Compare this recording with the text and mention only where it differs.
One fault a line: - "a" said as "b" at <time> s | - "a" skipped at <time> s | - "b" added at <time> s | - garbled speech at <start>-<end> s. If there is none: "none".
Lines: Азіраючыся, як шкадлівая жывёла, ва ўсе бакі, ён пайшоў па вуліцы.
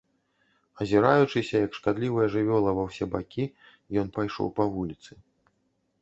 none